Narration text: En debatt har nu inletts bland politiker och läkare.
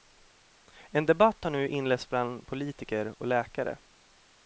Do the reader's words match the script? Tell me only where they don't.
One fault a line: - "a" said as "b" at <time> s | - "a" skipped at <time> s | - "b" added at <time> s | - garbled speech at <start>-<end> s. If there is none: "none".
none